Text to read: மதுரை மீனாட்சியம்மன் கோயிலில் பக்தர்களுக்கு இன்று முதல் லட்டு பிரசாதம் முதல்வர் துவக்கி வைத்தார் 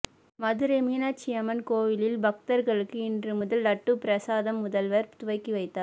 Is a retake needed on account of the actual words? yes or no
no